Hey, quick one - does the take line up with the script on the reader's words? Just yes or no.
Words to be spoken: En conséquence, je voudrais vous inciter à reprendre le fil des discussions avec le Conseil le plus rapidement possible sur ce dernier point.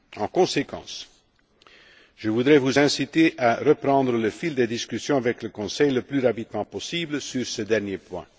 yes